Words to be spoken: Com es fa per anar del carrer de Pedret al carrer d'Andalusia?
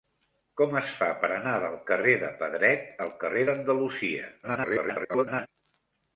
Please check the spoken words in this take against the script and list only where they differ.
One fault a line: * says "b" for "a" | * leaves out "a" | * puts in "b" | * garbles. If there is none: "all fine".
* garbles